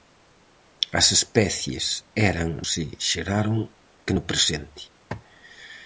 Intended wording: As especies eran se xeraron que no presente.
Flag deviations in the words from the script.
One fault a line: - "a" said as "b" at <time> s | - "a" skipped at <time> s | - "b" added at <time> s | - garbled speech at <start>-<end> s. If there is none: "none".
none